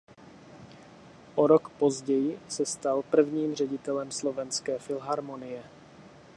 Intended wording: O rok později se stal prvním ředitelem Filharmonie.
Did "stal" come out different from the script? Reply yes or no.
no